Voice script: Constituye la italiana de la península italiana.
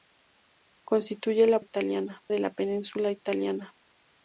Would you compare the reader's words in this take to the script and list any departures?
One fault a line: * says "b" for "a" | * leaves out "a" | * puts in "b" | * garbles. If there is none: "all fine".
all fine